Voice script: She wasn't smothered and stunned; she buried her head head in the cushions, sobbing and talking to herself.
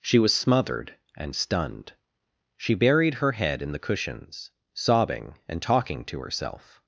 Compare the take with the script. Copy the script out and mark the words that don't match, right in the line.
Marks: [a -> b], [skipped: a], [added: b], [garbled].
She [wasn't -> was] smothered and stunned; she buried her head [skipped: head] in the cushions, sobbing and talking to herself.